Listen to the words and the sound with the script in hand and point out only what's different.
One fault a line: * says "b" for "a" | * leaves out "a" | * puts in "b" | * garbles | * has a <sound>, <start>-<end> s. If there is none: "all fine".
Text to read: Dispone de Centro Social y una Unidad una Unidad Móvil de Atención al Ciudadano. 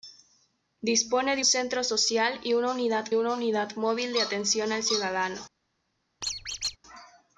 * has a squeak, 6.2-6.8 s